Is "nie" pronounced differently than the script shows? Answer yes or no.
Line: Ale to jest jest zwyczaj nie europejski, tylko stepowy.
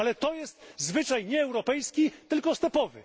no